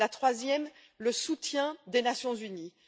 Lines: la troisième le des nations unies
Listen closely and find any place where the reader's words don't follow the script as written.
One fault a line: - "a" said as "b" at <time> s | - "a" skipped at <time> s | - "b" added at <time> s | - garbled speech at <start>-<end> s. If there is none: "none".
- "soutien" added at 1.1 s